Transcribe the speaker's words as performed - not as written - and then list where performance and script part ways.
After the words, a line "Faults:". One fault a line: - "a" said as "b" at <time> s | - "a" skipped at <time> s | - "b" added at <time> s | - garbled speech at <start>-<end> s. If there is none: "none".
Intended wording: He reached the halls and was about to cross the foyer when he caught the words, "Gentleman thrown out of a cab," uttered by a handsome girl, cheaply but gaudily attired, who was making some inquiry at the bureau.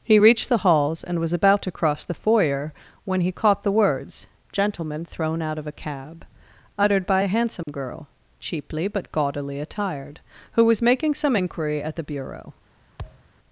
He reached the halls and was about to cross the foyer when he caught the words, "Gentleman thrown out of a cab," uttered by a handsome girl, cheaply but gaudily attired, who was making some inquiry at the bureau.
Faults:
none